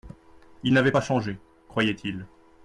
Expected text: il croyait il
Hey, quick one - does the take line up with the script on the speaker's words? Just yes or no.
no